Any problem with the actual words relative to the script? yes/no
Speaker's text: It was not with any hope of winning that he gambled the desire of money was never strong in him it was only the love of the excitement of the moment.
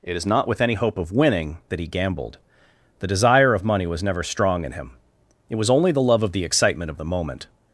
yes